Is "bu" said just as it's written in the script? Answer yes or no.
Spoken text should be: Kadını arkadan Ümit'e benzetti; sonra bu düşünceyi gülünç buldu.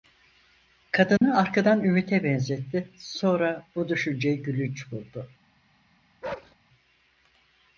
yes